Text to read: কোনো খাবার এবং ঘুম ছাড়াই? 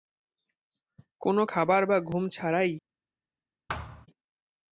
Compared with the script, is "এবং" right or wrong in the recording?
wrong